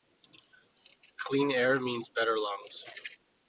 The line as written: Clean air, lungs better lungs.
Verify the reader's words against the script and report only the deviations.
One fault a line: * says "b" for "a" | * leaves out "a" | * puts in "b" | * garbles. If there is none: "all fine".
* says "means" for "lungs"